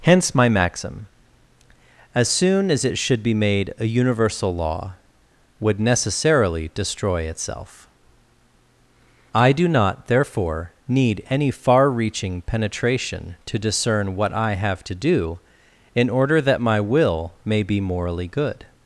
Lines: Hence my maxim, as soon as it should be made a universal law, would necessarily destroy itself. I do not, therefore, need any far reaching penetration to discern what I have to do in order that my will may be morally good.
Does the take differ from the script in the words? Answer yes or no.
no